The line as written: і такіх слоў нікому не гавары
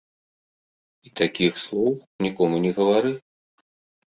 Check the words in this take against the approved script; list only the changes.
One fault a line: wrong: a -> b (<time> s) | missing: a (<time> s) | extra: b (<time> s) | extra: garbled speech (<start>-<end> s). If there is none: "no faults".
no faults